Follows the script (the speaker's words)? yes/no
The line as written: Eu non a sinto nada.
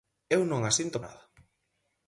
yes